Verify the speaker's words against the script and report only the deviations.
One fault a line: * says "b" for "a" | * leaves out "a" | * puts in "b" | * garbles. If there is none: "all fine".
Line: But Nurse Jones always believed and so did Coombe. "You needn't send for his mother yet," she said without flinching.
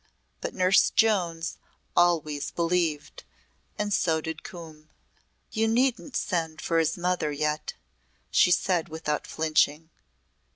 all fine